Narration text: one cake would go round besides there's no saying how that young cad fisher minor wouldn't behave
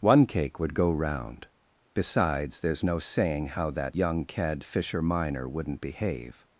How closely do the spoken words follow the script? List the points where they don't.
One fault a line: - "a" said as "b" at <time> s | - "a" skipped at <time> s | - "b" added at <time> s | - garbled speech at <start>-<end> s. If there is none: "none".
none